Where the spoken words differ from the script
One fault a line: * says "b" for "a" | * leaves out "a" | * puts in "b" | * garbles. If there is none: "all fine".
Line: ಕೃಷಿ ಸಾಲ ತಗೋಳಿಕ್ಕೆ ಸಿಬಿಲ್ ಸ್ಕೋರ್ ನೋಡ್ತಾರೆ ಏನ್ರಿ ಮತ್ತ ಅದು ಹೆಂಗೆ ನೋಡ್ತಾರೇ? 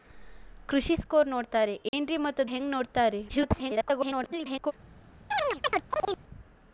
* leaves out "ಸಾಲ ತಗೋಳಿಕ್ಕೆ ಸಿಬಿಲ್"
* leaves out "ಅದು"
* garbles